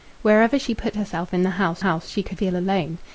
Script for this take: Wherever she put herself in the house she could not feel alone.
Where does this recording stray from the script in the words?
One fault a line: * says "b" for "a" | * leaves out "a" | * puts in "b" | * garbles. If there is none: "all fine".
* puts in "house"
* leaves out "not"